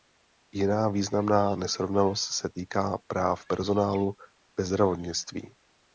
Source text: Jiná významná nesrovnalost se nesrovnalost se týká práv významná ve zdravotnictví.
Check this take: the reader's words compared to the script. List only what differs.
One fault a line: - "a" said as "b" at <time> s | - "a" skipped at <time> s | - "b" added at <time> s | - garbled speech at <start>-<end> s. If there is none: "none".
- "nesrovnalost se" skipped at 2.5 s
- "významná" said as "personálu" at 3.5 s